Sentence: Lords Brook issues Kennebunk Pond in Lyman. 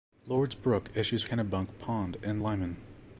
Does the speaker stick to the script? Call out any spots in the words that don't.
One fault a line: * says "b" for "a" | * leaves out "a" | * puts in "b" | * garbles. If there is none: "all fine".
all fine